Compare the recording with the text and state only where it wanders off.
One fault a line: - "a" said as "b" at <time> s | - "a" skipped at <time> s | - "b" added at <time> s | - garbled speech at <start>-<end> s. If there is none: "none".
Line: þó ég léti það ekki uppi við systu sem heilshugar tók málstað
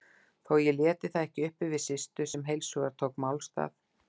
none